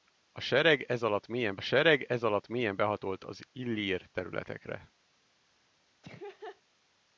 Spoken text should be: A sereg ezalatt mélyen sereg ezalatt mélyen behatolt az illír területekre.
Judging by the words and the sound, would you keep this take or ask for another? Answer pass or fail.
fail